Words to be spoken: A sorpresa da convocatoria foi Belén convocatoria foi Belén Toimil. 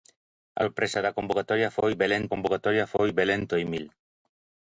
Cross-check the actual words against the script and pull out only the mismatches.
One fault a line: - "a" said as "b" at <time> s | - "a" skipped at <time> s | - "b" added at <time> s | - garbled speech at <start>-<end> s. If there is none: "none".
none